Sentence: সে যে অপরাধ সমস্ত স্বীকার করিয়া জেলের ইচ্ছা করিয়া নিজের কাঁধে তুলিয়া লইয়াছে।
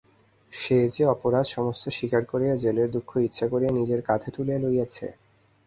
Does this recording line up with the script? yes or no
no